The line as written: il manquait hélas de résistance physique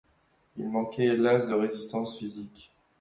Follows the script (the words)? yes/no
yes